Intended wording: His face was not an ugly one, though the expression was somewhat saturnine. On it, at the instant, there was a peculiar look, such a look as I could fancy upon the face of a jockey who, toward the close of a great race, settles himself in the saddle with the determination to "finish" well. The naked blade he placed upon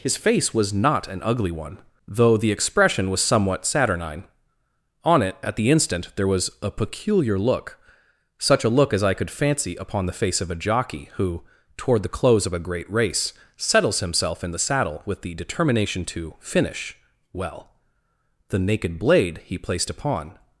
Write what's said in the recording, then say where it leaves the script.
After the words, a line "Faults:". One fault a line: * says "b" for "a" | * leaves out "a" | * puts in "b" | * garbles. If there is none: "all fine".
His face was not an ugly one, though the expression was somewhat saturnine. On it, at the instant, there was a peculiar look, such a look as I could fancy upon the face of a jockey who, toward the close of a great race, settles himself in the saddle with the determination to "finish" well. The naked blade he placed upon
Faults:
all fine